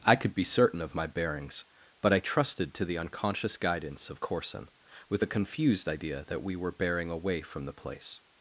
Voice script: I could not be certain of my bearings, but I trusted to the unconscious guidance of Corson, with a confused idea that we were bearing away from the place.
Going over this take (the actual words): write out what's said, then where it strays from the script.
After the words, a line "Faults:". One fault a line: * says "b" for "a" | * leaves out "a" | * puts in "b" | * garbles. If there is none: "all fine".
I could be certain of my bearings, but I trusted to the unconscious guidance of Corson, with a confused idea that we were bearing away from the place.
Faults:
* leaves out "not"